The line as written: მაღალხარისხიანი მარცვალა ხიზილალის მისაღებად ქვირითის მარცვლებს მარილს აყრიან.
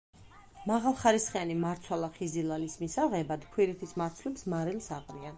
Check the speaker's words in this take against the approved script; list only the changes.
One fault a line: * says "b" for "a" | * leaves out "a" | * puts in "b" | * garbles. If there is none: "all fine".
all fine